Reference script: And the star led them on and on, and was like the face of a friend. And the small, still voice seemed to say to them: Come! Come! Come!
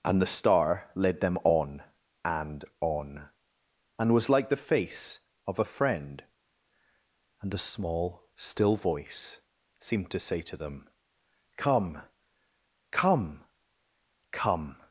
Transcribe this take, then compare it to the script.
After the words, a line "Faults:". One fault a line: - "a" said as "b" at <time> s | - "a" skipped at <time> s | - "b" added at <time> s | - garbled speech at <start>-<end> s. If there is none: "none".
And the star led them on and on, and was like the face of a friend. And the small, still voice seemed to say to them: Come! Come! Come!
Faults:
none